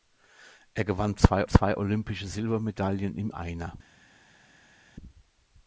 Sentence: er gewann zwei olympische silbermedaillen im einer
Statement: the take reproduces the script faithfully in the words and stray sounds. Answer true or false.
false